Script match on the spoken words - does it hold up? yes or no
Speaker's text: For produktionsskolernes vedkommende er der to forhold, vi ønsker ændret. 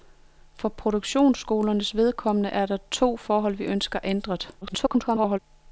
no